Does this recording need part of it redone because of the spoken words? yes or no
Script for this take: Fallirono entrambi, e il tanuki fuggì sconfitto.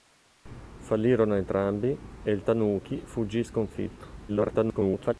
yes